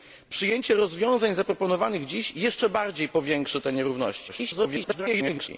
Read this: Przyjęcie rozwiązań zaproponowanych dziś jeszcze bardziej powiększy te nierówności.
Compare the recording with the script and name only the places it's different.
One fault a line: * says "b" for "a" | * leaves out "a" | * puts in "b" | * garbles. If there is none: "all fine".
* garbles